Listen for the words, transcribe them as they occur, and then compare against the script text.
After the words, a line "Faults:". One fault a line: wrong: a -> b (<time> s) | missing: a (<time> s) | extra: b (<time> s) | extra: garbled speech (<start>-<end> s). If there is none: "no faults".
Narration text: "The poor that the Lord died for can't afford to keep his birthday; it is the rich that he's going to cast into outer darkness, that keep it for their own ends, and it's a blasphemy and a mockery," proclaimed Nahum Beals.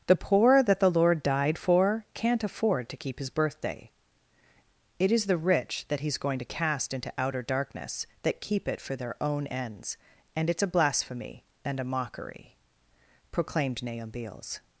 "The poor that the Lord died for can't afford to keep his birthday; it is the rich that he's going to cast into outer darkness, that keep it for their own ends, and it's a blasphemy and a mockery," proclaimed Nahum Beals.
Faults:
no faults